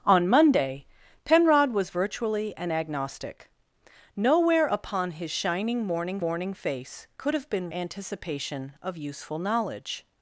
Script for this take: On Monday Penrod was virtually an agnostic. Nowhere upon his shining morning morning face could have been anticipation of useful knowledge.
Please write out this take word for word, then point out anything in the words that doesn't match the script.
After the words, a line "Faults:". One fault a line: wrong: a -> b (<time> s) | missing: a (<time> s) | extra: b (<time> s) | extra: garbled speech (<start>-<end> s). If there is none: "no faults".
On Monday Penrod was virtually an agnostic. Nowhere upon his shining morning morning face could have been anticipation of useful knowledge.
Faults:
no faults